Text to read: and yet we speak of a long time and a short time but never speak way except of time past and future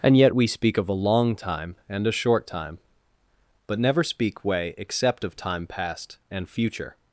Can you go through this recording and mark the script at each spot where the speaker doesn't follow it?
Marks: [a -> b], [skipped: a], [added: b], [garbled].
and yet we speak of a long time and a short time but never speak way except of time past and future